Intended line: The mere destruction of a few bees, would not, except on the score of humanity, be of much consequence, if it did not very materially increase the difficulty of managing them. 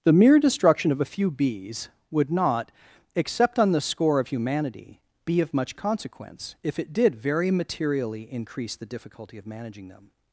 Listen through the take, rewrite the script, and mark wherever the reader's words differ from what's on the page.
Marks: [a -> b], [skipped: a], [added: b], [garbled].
The mere destruction of a few bees, would not, except on the score of humanity, be of much consequence, if it did [skipped: not] very materially increase the difficulty of managing them.